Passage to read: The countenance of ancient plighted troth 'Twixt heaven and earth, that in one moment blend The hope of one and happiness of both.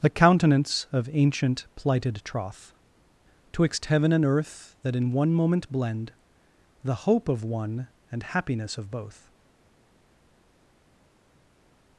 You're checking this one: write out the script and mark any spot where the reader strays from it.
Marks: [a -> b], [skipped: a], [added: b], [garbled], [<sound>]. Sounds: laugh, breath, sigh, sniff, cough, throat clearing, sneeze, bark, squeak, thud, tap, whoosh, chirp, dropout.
The countenance of ancient plighted troth 'Twixt heaven and earth, that in one moment blend The hope of one and happiness of both.